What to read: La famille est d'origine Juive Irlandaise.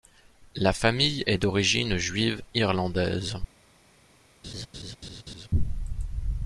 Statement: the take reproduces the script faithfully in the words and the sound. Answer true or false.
false